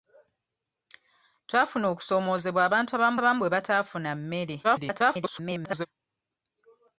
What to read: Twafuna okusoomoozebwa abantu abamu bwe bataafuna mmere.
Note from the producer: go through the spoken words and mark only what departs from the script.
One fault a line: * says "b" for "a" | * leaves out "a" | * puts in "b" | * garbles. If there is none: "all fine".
* puts in "abamu"
* garbles